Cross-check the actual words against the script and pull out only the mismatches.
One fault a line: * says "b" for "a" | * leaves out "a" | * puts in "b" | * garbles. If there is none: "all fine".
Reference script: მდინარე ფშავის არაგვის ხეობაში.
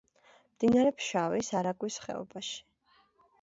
all fine